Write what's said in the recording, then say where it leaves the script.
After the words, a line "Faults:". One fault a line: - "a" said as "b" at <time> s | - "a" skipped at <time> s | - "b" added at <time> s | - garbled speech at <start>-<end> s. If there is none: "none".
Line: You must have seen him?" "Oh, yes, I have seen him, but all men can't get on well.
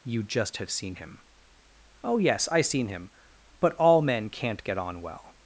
You just have seen him?" "Oh, yes, I seen him, but all men can't get on well.
Faults:
- "must" said as "just" at 0.2 s
- "have" skipped at 2.6 s